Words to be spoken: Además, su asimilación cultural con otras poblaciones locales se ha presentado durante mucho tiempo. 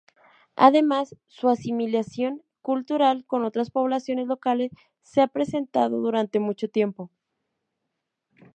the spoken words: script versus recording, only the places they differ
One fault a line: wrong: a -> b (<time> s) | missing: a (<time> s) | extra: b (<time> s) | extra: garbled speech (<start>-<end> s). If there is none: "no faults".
no faults